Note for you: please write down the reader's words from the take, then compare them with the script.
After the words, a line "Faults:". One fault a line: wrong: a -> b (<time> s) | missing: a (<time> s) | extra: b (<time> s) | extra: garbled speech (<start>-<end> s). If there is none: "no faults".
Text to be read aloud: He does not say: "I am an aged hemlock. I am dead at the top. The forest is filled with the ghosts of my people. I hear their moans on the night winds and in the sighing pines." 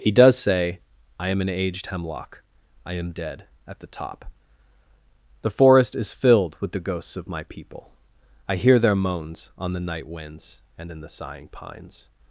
He does say: "I am an aged hemlock. I am dead at the top. The forest is filled with the ghosts of my people. I hear their moans on the night winds and in the sighing pines."
Faults:
missing: not (0.3 s)